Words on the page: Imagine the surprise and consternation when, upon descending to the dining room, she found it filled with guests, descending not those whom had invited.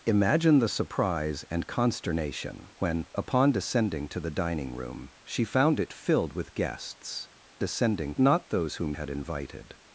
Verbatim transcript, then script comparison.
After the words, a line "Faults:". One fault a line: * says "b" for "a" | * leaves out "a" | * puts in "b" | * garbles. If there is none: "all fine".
Imagine the surprise and consternation when, upon descending to the dining room, she found it filled with guests, descending not those whom had invited.
Faults:
all fine